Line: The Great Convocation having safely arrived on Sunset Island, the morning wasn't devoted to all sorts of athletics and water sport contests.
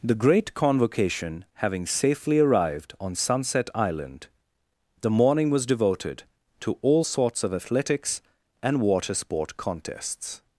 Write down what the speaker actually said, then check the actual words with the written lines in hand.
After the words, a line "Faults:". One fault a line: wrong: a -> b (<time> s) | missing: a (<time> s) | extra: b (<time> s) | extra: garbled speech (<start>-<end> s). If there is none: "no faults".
The Great Convocation having safely arrived on Sunset Island, the morning was devoted to all sorts of athletics and water sport contests.
Faults:
wrong: wasn't -> was (5.5 s)